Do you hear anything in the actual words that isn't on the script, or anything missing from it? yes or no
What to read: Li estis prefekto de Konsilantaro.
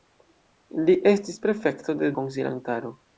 no